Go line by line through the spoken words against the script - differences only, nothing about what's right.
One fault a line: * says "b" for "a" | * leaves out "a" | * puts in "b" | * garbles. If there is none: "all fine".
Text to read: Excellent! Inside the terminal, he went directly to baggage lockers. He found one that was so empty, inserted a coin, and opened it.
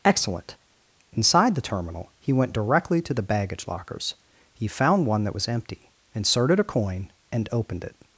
* puts in "the"
* leaves out "so"